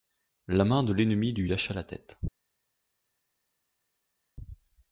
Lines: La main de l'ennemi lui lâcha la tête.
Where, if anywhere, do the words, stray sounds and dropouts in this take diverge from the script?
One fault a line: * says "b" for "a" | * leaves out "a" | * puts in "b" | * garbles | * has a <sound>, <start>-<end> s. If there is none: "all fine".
all fine